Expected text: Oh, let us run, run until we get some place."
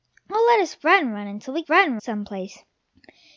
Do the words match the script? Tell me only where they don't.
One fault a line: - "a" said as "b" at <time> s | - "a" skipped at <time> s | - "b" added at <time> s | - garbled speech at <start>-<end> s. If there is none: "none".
- "get" said as "run" at 1.7 s